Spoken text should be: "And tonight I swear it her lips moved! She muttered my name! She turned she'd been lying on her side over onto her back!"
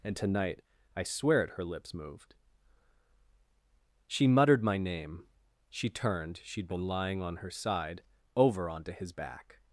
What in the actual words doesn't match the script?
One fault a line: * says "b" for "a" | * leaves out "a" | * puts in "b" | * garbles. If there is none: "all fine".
* says "his" for "her"